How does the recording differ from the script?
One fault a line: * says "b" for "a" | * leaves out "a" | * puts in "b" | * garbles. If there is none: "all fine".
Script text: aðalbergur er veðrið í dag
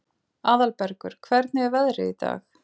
* puts in "hvernig"